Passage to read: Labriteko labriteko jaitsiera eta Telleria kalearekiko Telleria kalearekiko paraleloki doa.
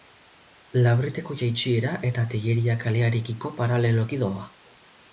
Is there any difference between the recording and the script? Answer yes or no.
yes